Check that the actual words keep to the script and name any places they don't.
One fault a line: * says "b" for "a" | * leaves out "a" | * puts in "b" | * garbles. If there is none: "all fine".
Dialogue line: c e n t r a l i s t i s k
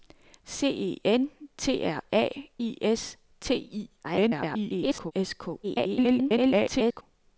* leaves out "l"
* garbles
* garbles